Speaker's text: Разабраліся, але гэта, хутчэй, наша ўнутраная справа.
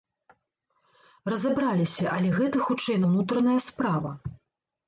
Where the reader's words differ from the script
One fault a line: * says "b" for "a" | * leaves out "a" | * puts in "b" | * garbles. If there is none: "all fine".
* leaves out "наша"